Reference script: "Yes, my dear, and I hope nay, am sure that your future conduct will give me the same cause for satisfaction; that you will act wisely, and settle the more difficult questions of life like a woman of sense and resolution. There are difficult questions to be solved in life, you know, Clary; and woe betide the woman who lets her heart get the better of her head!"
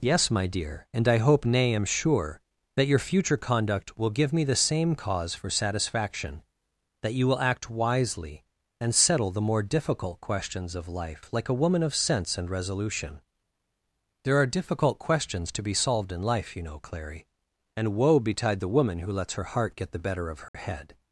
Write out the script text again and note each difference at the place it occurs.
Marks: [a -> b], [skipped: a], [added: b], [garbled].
"Yes, my dear, and I hope nay, am sure that your future conduct will give me the same cause for satisfaction; that you will act wisely, and settle the more difficult questions of life like a woman of sense and resolution. There are difficult questions to be solved in life, you know, Clary; and woe betide the woman who lets her heart get the better of her head!"